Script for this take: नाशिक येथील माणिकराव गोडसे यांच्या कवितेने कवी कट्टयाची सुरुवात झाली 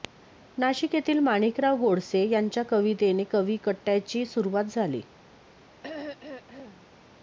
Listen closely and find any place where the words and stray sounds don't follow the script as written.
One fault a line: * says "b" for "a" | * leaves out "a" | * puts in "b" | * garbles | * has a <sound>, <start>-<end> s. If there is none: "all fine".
* has a throat clearing, 5.8-6.9 s